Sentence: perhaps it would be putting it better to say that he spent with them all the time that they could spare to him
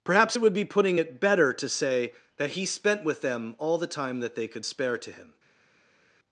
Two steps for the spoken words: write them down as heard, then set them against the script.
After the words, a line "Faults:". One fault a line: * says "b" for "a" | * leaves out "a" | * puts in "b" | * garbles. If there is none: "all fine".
perhaps it would be putting it better to say that he spent with them all the time that they could spare to him
Faults:
all fine